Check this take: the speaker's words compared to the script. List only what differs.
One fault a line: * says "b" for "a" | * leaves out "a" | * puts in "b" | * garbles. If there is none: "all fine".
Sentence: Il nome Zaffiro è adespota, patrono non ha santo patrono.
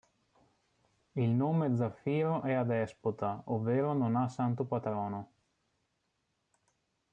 * says "ovvero" for "patrono"